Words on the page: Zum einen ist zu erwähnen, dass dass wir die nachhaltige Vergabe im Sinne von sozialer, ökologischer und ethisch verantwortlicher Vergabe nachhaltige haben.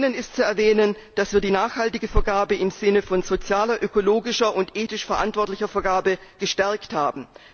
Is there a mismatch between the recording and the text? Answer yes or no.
yes